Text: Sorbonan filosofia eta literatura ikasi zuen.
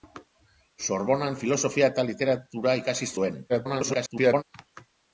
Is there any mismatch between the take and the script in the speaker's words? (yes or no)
yes